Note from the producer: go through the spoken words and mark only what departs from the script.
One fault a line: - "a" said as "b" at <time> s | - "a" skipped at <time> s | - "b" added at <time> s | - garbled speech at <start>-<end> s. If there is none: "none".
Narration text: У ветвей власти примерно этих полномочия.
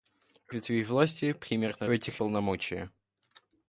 none